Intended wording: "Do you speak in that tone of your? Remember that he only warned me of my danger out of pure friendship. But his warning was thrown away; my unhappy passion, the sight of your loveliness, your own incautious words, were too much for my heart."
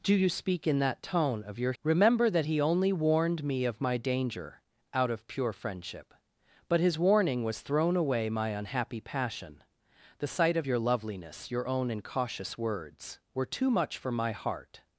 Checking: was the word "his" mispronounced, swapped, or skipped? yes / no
no